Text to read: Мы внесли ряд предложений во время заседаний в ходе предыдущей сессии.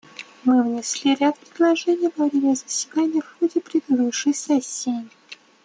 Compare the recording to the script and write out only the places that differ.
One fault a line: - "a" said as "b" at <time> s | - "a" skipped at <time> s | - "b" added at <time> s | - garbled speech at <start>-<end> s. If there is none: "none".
none